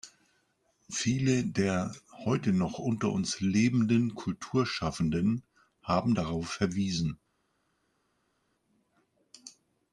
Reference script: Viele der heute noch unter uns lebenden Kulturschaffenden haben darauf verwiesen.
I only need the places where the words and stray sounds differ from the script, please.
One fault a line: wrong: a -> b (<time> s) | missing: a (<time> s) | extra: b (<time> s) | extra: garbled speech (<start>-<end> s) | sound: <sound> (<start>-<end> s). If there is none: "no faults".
no faults